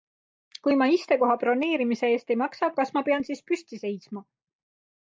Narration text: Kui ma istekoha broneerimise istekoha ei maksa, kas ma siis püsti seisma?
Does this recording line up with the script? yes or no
no